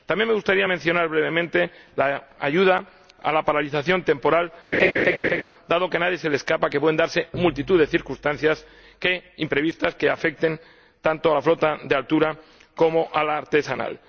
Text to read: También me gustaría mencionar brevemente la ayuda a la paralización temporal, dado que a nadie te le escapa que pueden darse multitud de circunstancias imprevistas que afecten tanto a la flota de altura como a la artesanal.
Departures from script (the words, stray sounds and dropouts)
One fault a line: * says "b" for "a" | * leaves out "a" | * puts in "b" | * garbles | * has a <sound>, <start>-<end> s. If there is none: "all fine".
* has a laugh, 4.7-5.4 s
* says "se" for "te"